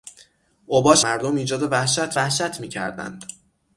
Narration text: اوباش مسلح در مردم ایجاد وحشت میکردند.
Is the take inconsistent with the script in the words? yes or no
yes